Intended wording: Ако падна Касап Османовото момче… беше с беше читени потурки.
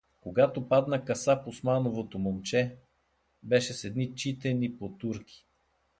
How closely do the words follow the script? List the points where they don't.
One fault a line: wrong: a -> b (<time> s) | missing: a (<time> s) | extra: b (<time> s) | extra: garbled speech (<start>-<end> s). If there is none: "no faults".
wrong: Ако -> Когато (0.2 s)
wrong: беше -> едни (3.8 s)